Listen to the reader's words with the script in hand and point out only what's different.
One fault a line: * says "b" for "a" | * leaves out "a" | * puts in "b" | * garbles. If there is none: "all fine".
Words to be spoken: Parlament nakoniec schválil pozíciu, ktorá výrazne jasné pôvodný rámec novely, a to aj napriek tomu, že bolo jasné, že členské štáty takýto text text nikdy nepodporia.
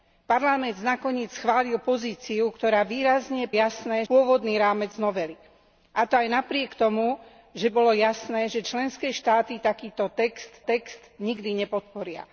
all fine